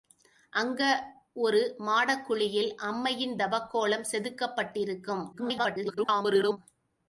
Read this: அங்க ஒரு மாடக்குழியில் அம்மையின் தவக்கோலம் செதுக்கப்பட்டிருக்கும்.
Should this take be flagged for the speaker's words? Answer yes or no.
yes